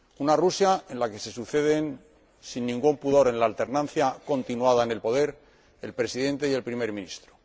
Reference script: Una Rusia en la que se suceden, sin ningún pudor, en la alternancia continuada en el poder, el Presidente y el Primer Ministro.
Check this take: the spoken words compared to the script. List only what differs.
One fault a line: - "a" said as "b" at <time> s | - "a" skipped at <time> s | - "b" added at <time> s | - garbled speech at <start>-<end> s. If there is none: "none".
none